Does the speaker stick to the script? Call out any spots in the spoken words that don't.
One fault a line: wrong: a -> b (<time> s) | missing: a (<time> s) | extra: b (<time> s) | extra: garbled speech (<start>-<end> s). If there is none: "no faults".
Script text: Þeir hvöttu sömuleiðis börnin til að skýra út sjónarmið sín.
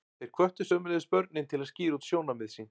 no faults